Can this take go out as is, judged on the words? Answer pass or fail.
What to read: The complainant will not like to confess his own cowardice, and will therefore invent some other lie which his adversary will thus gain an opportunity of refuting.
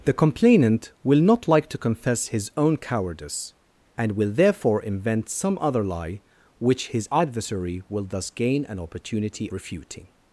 fail